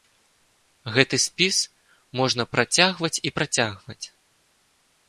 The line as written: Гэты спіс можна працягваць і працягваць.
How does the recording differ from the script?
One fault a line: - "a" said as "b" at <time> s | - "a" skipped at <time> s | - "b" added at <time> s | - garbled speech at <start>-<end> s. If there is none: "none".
none